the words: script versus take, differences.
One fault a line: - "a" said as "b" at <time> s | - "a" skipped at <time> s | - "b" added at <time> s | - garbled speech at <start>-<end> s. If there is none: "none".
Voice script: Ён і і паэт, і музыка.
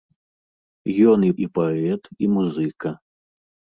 none